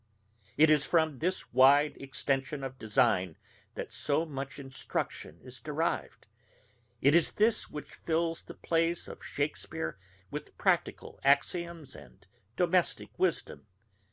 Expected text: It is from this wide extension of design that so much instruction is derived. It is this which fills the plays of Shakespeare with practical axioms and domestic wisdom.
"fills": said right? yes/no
yes